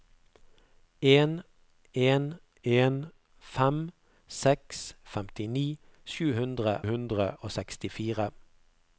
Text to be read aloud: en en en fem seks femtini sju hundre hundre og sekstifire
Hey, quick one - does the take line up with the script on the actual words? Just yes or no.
yes